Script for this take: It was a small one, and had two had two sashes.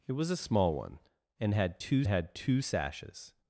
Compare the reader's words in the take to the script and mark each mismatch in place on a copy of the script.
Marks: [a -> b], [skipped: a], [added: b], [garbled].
It was a small one, and had two had two sashes.